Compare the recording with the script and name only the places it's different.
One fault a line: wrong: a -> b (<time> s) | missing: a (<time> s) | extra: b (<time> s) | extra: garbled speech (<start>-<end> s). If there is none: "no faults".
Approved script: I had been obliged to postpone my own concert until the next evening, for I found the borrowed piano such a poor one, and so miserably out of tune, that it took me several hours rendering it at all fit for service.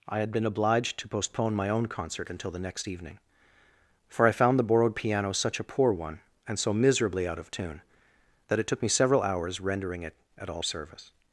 missing: fit for (10.6 s)